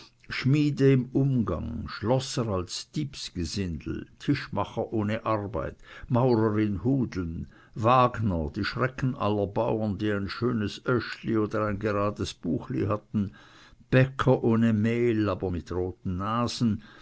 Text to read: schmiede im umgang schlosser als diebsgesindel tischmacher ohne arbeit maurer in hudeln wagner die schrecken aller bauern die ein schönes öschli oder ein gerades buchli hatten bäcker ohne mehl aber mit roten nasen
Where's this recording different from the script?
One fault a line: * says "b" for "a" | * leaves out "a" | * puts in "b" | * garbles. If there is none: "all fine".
all fine